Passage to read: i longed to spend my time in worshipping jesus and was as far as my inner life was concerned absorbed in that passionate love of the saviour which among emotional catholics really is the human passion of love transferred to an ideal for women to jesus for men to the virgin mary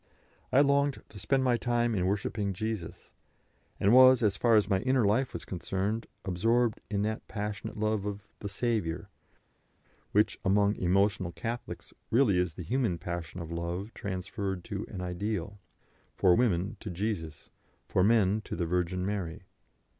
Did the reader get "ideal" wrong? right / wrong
right